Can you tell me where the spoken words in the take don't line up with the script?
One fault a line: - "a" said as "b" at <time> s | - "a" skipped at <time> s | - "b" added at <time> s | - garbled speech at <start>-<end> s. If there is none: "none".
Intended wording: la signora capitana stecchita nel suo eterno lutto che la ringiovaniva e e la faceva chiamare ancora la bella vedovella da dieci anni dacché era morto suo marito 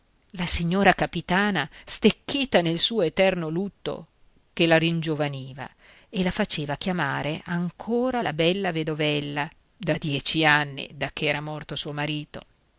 - "e" skipped at 6.2 s